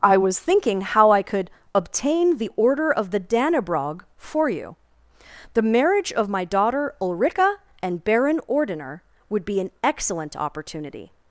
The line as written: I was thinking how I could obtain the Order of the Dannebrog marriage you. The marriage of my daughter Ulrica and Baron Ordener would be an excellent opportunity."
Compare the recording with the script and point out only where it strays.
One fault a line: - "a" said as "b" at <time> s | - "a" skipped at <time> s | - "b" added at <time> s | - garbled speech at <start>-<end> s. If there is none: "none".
- "marriage" said as "for" at 4.2 s